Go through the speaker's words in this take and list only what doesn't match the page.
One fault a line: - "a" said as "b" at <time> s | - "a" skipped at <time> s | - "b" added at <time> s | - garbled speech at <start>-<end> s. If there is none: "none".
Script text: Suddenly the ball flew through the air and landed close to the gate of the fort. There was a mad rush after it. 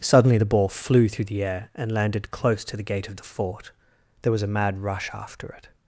none